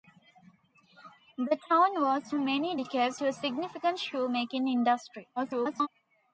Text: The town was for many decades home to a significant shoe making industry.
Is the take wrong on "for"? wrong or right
wrong